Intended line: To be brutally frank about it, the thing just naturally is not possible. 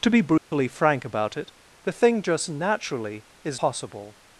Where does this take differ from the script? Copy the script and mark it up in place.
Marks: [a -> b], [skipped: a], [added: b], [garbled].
To be brutally frank about it, the thing just naturally is [skipped: not] possible.